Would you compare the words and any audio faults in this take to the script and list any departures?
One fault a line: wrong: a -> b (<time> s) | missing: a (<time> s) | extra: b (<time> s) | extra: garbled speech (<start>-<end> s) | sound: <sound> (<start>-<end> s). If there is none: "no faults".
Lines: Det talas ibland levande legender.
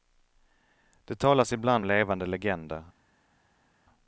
no faults